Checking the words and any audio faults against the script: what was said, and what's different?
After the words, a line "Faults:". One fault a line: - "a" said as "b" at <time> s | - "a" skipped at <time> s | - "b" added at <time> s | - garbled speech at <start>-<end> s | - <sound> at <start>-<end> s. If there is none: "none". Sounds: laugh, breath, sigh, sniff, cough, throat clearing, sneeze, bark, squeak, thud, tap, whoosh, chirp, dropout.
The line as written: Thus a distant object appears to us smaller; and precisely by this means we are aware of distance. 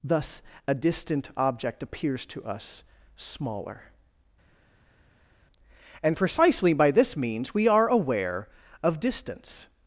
Thus a distant object appears to us smaller; and precisely by this means we are aware of distance.
Faults:
none